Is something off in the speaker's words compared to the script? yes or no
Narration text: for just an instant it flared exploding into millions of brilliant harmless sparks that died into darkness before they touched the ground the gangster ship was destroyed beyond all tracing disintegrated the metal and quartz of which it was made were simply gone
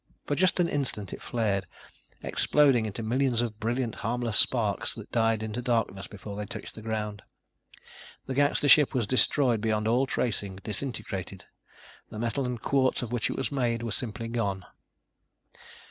no